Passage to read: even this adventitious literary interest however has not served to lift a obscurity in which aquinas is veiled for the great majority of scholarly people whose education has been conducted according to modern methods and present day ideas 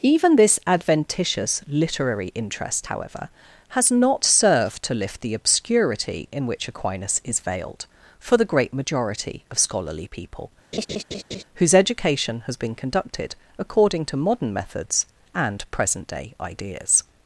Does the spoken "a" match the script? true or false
false